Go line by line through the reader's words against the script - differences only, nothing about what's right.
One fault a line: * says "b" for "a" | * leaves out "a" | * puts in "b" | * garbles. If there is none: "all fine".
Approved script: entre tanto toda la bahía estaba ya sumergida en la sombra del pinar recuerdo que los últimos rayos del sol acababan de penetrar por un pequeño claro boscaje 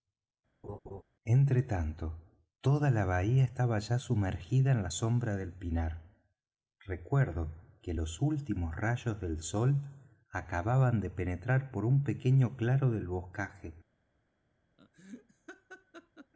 * puts in "del"